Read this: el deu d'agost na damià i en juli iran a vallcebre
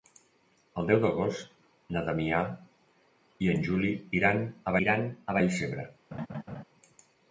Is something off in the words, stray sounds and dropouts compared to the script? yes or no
yes